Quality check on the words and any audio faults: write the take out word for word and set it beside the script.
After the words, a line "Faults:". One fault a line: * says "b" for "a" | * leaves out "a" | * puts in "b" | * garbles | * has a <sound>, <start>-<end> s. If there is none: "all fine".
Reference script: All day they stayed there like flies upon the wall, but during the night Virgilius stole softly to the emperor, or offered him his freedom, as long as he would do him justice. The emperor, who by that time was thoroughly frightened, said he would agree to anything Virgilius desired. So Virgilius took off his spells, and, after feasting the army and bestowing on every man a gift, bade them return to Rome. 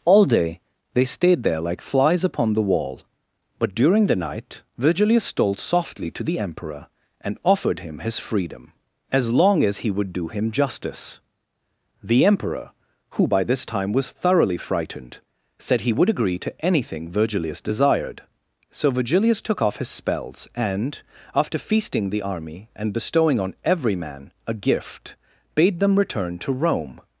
All day they stayed there like flies upon the wall, but during the night Virgilius stole softly to the emperor, and offered him his freedom, as long as he would do him justice. The emperor, who by this time was thoroughly frightened, said he would agree to anything Virgilius desired. So Virgilius took off his spells, and, after feasting the army and bestowing on every man a gift, bade them return to Rome.
Faults:
* says "and" for "or"
* says "this" for "that"